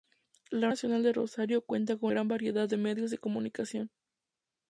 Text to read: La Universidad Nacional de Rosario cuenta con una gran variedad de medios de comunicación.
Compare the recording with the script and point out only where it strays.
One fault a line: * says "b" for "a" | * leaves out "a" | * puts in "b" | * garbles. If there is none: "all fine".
* leaves out "Universidad"
* leaves out "una"